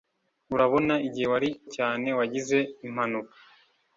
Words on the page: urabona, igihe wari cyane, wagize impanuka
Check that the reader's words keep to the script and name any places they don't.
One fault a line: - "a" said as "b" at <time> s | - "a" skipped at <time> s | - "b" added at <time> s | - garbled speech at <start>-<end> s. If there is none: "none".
none